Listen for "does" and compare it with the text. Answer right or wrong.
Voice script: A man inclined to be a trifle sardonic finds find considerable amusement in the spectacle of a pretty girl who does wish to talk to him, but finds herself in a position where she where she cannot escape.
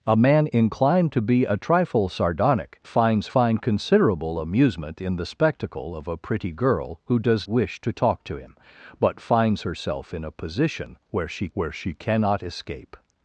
right